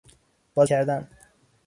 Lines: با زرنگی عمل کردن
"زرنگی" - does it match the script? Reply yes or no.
no